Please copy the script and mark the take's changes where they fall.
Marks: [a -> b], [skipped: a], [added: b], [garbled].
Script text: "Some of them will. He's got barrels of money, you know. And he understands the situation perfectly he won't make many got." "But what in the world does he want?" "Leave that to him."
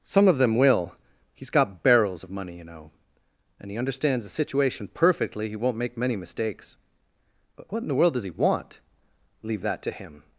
"Some of them will. He's got barrels of money, you know. And he understands the situation perfectly he won't make many [got." -> mistakes] "But what in the world does he want?" "Leave that to him."